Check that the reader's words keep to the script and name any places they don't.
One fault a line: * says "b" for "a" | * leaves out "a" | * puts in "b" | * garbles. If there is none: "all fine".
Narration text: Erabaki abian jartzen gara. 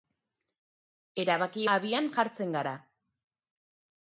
all fine